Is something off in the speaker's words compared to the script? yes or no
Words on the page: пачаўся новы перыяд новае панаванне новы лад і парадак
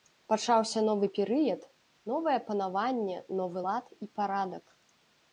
no